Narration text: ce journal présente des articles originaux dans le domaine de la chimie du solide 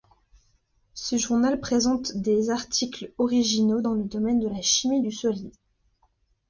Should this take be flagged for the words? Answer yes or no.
no